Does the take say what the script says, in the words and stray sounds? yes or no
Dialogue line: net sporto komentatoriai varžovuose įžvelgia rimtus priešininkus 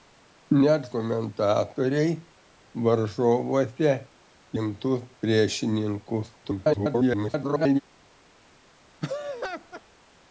no